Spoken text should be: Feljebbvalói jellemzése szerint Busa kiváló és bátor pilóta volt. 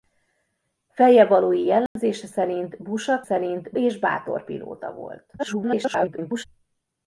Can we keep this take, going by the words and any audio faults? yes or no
no